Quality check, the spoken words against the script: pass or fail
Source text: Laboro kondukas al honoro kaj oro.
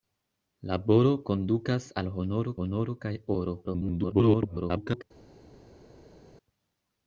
fail